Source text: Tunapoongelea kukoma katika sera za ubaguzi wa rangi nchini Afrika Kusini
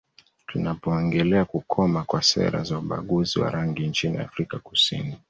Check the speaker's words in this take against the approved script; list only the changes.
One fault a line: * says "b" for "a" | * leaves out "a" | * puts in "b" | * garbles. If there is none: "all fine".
* says "kwa" for "katika"